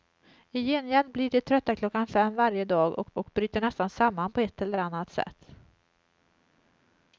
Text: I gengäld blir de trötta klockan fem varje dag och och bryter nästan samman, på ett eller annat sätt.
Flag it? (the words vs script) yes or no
no